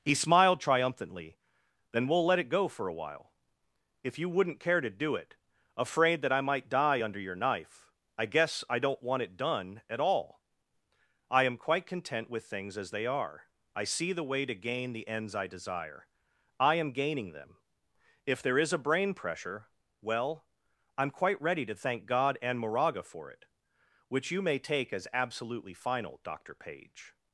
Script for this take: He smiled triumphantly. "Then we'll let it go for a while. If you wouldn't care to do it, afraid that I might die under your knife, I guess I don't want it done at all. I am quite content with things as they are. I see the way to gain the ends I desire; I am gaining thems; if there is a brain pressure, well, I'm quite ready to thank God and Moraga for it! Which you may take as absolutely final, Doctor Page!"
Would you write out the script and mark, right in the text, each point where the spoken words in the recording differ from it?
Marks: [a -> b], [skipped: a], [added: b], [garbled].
He smiled triumphantly. "Then we'll let it go for a while. If you wouldn't care to do it, afraid that I might die under your knife, I guess I don't want it done at all. I am quite content with things as they are. I see the way to gain the ends I desire; I am gaining [thems; -> them] if there is a brain pressure, well, I'm quite ready to thank God and Moraga for it! Which you may take as absolutely final, Doctor Page!"